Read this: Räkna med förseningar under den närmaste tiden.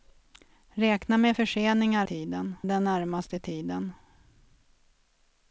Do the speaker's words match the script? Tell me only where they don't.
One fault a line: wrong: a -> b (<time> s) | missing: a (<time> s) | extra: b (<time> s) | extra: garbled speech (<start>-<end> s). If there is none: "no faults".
wrong: under -> tiden (2.0 s)